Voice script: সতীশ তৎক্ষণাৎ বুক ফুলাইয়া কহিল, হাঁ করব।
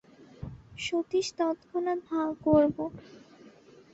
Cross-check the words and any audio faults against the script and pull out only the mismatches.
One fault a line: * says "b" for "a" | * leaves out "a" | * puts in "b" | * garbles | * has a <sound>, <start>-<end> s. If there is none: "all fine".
* leaves out "বুক ফুলাইয়া কহিল"